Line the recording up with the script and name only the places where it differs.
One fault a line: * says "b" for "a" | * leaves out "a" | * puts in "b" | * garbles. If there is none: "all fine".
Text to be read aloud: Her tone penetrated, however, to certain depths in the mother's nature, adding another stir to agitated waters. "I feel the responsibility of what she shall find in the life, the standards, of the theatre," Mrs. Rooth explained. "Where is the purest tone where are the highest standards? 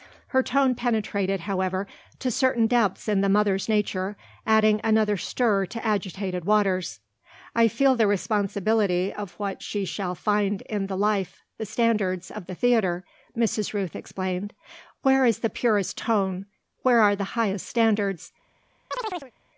all fine